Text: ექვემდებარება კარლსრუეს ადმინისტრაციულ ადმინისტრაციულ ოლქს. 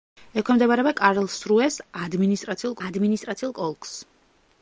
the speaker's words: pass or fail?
pass